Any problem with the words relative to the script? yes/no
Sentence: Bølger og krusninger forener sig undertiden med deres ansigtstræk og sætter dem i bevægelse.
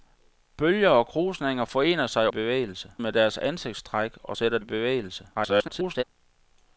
yes